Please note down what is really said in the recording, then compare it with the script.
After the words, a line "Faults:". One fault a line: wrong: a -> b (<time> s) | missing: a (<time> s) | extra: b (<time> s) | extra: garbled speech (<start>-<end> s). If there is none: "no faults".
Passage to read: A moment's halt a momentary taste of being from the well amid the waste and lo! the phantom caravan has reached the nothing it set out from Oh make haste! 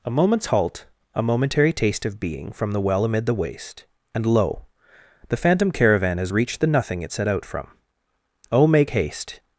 A moment's halt a momentary taste of being from the well amid the waste and lo! the phantom caravan has reached the nothing it set out from Oh make haste!
Faults:
no faults